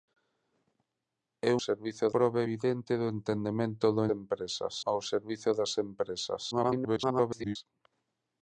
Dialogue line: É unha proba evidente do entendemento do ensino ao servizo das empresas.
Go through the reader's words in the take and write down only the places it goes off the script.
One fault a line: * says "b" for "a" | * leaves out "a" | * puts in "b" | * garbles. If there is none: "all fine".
* says "servizo" for "unha"
* says "empresas" for "ensino"
* garbles